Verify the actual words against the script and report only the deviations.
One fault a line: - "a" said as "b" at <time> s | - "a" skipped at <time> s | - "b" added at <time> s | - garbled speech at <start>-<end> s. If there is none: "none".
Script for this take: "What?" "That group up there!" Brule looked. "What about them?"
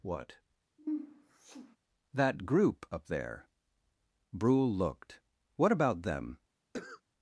none